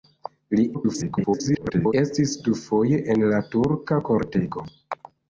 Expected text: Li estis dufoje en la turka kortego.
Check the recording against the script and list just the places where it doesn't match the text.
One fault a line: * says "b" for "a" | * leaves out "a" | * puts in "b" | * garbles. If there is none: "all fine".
* garbles